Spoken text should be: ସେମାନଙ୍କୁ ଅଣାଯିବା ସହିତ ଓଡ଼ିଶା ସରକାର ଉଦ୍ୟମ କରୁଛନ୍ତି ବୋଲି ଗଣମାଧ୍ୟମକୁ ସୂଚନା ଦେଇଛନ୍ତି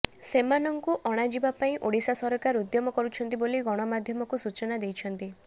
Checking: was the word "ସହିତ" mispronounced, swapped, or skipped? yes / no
yes